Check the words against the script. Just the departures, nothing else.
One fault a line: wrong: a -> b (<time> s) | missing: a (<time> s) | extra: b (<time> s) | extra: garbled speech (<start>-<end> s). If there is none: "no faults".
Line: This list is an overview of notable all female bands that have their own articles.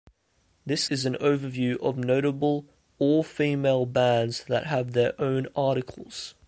missing: list (0.9 s)